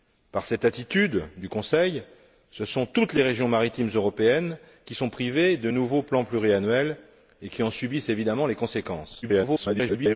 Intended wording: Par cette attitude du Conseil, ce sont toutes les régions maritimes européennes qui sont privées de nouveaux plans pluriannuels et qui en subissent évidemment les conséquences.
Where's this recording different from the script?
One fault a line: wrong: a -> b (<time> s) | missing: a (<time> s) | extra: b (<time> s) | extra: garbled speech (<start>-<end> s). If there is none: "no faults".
extra: garbled speech (9.2-10.2 s)